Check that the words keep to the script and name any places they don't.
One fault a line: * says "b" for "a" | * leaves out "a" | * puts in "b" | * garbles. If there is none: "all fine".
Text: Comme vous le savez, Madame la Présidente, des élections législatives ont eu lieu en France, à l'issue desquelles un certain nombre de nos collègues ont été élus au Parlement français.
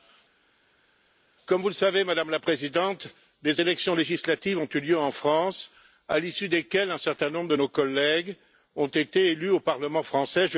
all fine